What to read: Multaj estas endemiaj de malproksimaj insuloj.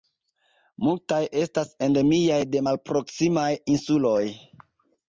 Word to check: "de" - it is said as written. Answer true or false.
true